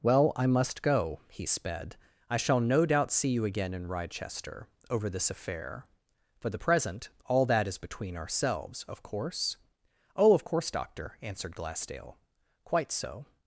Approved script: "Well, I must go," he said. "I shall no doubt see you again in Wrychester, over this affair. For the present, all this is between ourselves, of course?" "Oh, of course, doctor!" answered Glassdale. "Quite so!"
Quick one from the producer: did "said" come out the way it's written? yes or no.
no